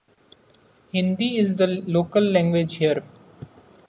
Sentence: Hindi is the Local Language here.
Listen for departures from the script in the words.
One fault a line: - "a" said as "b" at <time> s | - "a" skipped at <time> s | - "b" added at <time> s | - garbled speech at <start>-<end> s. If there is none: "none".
none